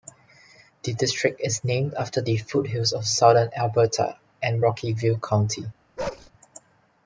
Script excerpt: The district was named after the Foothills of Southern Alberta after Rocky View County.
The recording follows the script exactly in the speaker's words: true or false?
false